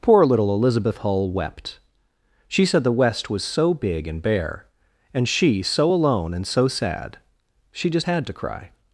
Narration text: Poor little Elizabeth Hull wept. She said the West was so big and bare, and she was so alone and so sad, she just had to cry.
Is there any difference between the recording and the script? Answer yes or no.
yes